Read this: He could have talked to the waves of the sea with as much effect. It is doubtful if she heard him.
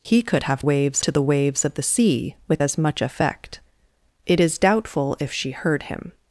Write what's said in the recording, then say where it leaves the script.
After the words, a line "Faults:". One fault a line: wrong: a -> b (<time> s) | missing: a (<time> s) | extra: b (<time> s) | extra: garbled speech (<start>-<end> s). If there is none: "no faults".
He could have waves to the waves of the sea with as much effect. It is doubtful if she heard him.
Faults:
wrong: talked -> waves (0.6 s)